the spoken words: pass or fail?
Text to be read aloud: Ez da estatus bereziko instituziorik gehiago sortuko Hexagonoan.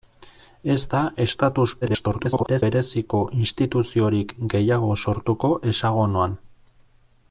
fail